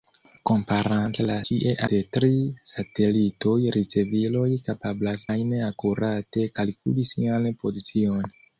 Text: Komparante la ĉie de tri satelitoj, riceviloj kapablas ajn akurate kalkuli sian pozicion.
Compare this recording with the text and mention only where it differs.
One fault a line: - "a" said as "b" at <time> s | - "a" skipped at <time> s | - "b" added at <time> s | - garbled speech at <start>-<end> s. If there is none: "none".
none